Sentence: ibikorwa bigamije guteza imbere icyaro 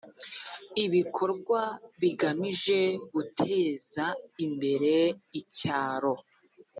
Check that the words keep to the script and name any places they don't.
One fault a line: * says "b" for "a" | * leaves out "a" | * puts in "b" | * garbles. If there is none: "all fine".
all fine